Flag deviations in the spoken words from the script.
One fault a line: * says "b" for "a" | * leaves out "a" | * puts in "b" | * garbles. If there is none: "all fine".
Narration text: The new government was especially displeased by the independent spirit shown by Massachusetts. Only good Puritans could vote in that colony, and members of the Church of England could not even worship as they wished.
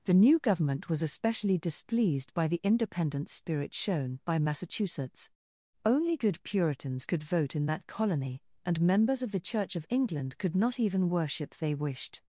* leaves out "as"